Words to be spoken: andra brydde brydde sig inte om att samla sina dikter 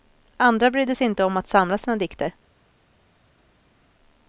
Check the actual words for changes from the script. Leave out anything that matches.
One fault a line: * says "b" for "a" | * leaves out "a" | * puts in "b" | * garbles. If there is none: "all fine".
* leaves out "brydde"